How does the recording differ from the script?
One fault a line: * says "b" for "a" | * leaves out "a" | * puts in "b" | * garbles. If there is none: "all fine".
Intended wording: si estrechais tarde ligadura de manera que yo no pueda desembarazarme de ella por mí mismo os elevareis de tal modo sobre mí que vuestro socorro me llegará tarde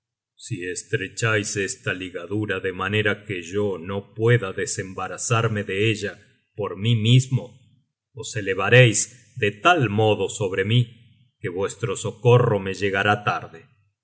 * says "esta" for "tarde"